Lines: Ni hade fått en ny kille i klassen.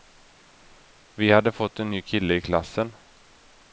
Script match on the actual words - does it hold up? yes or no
no